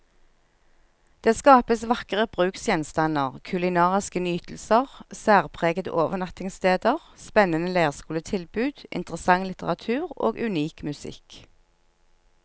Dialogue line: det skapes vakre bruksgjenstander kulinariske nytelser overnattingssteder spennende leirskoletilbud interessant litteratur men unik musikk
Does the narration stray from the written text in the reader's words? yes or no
yes